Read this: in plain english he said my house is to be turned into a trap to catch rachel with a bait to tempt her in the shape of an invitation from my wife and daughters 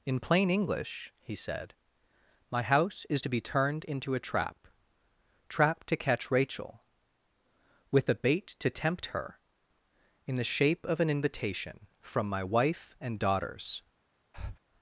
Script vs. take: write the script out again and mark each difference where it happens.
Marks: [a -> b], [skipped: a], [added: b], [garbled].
in plain english he said my house is to be turned into a trap [added: trap] to catch rachel with a bait to tempt her in the shape of an invitation from my wife and daughters